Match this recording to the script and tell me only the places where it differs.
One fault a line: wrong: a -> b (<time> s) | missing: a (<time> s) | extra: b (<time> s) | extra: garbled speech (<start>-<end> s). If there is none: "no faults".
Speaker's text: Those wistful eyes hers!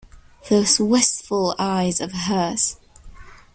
extra: of (2.0 s)